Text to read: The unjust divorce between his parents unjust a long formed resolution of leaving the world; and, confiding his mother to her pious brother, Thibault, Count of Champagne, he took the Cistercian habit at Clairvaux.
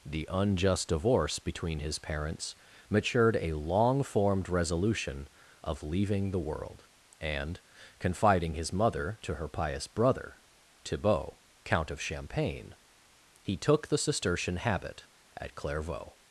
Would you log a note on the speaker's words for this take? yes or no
yes